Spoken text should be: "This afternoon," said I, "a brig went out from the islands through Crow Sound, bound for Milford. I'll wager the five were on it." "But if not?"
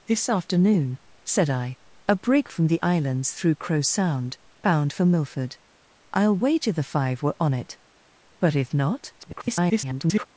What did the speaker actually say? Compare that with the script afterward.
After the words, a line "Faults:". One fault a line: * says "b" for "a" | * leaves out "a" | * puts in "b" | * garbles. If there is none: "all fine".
"This afternoon," said I, "a brig from the islands through Crow Sound, bound for Milford. I'll wager the five were on it." "But if not?" [garbled]
Faults:
* leaves out "went out"
* garbles